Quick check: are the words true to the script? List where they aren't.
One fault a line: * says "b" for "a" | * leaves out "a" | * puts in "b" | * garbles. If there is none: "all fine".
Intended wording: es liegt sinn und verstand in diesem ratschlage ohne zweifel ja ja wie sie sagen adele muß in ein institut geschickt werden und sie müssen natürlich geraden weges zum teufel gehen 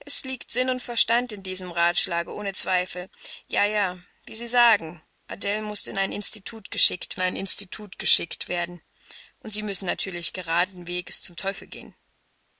* puts in "ein institut geschickt"